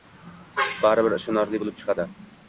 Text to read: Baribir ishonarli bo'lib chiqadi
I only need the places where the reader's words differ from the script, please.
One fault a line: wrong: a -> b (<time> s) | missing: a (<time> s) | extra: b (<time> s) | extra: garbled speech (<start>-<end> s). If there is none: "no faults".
no faults